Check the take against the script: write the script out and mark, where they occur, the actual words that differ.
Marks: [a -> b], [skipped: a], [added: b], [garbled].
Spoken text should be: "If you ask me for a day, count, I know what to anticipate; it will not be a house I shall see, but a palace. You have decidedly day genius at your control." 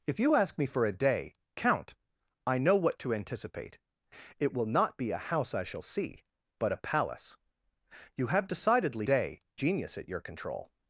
"If you ask me for a day, count, I know what to anticipate; it will not be a house I shall see, but a palace. You have decidedly day genius at your control."